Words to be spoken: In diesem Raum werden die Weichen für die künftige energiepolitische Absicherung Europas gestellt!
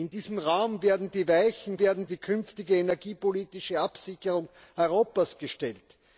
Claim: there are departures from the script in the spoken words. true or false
true